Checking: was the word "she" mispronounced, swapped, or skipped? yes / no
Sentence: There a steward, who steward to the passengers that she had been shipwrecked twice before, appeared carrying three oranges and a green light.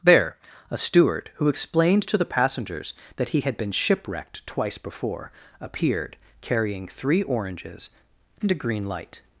yes